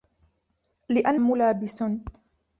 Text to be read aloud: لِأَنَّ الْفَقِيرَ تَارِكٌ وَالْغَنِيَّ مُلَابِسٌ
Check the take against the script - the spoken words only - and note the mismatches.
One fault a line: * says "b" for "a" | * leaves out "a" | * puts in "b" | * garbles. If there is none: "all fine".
* leaves out "الْفَقِيرَ تَارِكٌ وَالْغَنِيَّ"